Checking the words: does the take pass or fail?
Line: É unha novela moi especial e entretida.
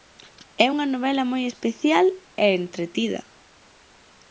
pass